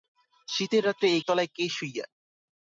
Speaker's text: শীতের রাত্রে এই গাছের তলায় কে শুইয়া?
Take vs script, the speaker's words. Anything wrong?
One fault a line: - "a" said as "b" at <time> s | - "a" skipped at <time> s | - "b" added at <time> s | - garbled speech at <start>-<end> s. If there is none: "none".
- "গাছের" skipped at 1.2 s